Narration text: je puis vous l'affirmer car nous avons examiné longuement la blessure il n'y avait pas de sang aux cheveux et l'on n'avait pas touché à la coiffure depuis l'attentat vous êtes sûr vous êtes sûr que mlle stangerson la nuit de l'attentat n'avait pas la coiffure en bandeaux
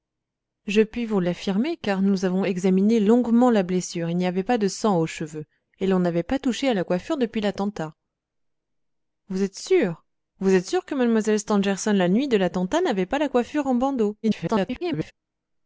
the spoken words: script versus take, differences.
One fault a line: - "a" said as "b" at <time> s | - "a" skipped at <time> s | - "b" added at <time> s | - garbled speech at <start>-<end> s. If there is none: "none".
- garbled speech at 14.2-15.1 s